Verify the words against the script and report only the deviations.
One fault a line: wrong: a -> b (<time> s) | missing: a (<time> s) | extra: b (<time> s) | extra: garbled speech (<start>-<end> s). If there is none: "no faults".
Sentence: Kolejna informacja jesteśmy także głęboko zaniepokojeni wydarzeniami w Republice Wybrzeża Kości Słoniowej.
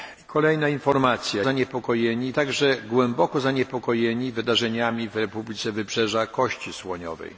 wrong: jesteśmy -> zaniepokojeni (1.4 s)